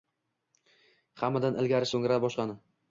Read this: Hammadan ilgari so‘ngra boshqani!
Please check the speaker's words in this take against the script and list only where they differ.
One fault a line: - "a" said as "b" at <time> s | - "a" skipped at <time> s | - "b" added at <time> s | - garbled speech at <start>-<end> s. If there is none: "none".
none